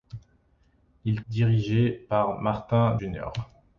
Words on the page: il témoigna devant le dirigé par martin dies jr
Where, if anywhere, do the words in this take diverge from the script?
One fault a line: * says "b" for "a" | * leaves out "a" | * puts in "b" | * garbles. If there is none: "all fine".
* leaves out "témoigna devant le"
* leaves out "dies"